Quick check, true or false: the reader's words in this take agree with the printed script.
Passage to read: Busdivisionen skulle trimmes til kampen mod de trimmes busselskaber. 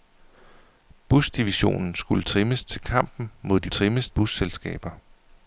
true